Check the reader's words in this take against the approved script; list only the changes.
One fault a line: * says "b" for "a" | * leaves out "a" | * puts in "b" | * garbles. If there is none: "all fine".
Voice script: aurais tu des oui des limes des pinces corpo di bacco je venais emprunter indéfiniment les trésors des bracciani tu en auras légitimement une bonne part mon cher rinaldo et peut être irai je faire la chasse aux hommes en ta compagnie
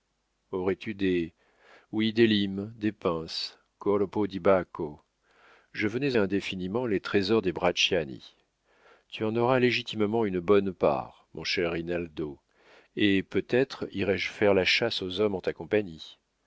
* leaves out "emprunter"